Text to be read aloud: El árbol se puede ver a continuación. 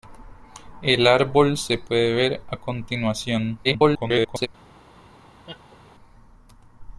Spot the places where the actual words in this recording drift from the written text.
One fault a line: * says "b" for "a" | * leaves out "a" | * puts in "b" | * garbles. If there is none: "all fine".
* garbles